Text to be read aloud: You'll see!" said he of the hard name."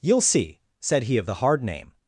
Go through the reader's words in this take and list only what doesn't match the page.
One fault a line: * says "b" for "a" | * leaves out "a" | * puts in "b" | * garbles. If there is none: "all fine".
all fine